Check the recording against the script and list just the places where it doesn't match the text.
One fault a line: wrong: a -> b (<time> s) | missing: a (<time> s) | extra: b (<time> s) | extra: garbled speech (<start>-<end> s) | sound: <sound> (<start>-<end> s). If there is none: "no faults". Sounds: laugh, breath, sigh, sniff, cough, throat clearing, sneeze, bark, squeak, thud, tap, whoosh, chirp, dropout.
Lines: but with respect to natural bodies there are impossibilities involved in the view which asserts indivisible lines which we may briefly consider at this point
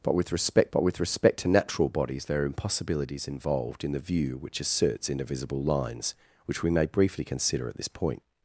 extra: but with respect (0.7 s)